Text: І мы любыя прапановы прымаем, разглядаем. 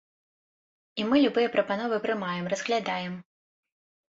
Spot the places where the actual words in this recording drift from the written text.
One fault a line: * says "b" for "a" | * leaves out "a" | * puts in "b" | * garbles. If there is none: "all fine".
all fine